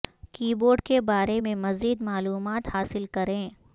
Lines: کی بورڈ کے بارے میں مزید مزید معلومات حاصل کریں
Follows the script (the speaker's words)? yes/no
no